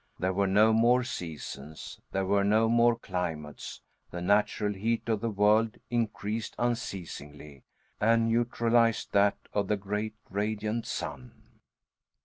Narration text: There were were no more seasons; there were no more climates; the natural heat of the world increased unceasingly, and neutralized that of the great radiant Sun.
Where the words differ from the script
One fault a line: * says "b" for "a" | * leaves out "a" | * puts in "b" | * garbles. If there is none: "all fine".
* leaves out "were"